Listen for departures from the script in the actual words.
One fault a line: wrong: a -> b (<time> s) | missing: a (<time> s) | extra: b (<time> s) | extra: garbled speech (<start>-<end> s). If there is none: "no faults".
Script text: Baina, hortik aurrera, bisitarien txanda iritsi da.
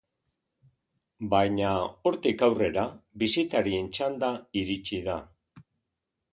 no faults